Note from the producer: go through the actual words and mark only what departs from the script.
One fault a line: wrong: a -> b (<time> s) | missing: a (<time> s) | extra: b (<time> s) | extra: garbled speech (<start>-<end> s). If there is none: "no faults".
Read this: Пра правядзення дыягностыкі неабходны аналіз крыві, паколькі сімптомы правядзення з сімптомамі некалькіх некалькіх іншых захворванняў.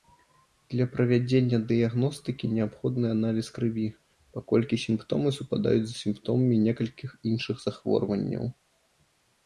wrong: Пра -> Для (0.7 s)
wrong: правядзення -> супадаюць (5.4 s)
missing: некалькіх (7.1 s)